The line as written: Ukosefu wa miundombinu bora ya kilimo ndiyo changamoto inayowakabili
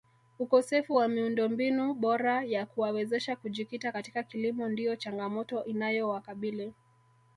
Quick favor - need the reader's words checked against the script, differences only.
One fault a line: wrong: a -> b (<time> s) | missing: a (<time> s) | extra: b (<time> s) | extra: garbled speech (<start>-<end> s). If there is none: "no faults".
extra: kuwawezesha kujikita katika (2.7 s)